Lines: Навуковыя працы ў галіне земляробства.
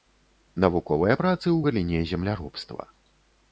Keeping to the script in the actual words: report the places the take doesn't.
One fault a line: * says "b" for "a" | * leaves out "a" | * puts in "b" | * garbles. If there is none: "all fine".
all fine